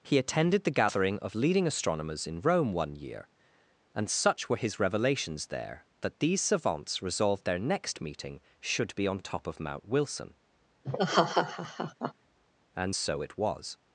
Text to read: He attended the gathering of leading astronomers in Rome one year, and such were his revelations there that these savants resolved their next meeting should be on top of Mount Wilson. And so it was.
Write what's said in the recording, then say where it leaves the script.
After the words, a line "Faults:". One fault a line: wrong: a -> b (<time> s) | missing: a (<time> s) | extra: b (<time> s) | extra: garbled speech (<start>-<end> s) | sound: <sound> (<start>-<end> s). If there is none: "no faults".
He attended the gathering of leading astronomers in Rome one year, and such were his revelations there that these savants resolved their next meeting should be on top of Mount Wilson. And so it was.
Faults:
sound: laugh (10.8-12.1 s)